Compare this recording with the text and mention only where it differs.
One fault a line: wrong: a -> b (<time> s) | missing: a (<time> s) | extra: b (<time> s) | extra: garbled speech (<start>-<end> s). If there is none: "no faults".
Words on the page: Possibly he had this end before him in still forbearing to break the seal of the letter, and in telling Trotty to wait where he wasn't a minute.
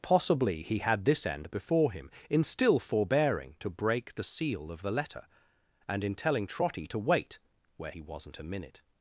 no faults